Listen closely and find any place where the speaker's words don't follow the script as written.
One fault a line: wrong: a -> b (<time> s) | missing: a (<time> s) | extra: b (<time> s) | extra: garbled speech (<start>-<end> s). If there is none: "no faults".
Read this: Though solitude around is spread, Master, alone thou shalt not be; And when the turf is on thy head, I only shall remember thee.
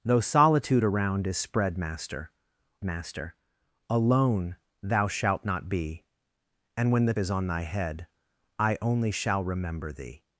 extra: Master (2.8 s)
missing: turf (7.1 s)